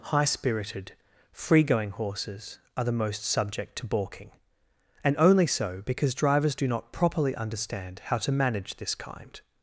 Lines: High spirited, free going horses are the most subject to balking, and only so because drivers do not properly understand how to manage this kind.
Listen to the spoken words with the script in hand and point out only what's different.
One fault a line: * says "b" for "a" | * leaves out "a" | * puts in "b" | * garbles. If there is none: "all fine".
all fine